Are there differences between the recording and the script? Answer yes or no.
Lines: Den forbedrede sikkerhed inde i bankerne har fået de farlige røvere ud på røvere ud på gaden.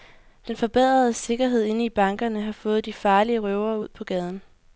yes